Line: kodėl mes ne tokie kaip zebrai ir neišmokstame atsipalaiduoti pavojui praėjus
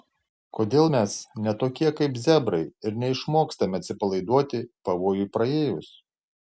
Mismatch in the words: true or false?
false